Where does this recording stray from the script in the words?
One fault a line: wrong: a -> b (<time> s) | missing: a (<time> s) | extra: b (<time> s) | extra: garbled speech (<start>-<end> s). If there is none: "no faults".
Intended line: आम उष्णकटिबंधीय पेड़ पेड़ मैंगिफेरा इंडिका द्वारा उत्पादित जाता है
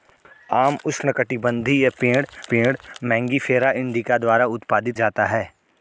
no faults